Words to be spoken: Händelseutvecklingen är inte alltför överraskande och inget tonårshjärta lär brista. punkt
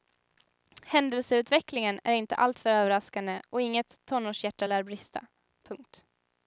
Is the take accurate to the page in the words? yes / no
yes